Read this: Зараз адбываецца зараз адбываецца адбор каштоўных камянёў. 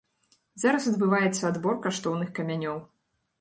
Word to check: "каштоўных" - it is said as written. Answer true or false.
true